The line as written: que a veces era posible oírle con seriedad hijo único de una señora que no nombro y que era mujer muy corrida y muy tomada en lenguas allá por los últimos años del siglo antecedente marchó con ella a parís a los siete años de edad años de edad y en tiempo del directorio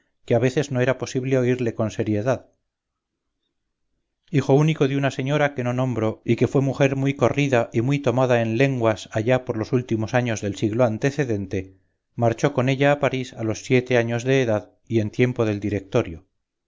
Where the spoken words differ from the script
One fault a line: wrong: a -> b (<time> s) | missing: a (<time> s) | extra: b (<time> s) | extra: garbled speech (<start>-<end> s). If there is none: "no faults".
extra: no (0.7 s)
wrong: era -> fue (6.5 s)
missing: años de edad (14.7 s)